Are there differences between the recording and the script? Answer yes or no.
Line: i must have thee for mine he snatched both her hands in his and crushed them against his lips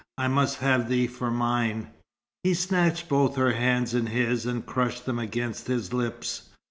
no